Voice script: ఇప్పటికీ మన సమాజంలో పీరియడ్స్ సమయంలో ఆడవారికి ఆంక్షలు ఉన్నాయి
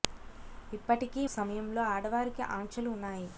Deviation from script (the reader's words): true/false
true